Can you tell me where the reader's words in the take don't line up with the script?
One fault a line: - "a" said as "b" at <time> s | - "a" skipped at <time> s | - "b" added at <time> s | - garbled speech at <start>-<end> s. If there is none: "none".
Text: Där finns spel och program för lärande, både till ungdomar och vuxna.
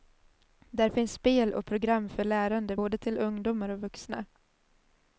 none